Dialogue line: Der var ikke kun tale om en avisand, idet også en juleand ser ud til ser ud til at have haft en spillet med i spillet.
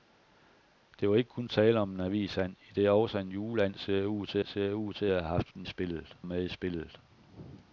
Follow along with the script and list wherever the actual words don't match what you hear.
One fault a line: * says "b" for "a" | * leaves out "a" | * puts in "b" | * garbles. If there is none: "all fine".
all fine